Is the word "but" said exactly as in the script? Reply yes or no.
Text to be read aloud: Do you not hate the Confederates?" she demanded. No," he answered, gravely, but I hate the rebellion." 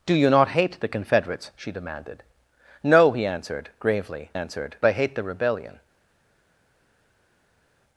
no